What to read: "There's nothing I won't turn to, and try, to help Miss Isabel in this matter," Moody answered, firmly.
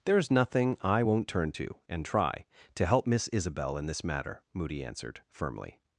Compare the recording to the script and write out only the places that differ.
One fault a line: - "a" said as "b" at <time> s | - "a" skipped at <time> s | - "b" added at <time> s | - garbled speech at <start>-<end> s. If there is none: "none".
none